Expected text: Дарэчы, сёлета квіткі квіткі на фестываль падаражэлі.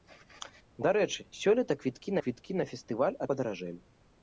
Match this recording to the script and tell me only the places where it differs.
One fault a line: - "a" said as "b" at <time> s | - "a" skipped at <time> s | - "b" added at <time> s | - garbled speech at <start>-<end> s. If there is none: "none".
none